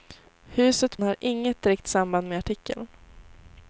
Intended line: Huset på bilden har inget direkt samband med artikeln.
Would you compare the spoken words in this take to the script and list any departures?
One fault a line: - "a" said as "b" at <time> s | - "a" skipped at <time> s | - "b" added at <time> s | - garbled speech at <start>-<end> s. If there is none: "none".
- "på bilden" skipped at 1.0 s